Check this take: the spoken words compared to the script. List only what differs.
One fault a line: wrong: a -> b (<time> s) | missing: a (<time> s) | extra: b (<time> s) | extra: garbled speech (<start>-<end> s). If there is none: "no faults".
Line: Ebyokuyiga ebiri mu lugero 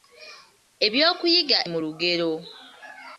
missing: ebiri (1.6 s)